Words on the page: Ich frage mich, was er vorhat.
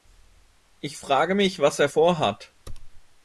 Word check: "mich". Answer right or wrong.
right